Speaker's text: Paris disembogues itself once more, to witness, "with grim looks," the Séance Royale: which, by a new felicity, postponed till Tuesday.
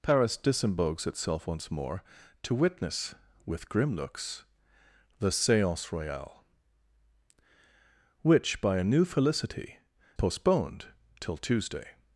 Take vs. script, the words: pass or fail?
pass